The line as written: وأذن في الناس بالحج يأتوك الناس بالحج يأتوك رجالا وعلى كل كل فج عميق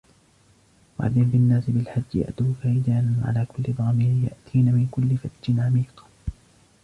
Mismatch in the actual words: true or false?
true